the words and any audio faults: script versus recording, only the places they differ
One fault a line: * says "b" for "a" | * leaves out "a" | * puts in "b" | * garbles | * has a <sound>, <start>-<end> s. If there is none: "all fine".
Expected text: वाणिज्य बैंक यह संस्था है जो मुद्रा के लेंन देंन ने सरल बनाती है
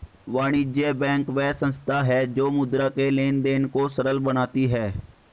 * says "वह" for "यह"
* says "को" for "ने"